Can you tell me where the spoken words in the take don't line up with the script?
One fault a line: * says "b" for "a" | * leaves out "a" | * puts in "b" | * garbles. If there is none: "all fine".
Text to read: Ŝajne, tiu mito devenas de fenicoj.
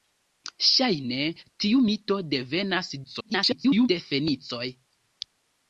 * garbles